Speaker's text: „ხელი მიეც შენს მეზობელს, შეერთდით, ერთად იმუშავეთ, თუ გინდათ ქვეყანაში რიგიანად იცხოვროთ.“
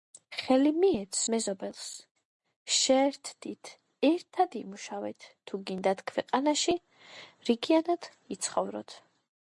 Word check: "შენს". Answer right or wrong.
wrong